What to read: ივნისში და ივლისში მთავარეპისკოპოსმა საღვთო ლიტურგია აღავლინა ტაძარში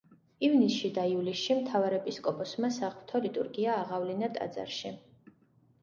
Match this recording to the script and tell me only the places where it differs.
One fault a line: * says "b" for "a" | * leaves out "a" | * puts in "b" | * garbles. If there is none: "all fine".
all fine